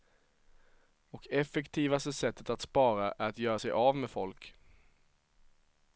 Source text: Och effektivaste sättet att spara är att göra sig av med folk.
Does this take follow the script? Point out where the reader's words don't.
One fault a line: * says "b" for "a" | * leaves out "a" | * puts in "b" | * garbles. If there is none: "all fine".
all fine